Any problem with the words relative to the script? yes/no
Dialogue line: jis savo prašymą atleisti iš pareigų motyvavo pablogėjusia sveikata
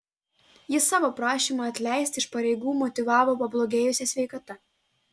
no